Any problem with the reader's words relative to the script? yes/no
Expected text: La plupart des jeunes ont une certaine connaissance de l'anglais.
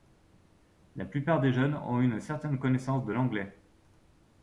no